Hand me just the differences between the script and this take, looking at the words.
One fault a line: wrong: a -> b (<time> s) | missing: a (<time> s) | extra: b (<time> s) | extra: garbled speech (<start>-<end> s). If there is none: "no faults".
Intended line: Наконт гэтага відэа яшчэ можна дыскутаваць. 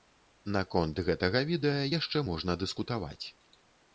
no faults